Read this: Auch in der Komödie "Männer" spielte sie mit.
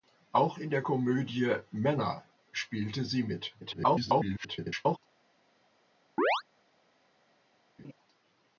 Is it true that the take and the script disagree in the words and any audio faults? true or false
true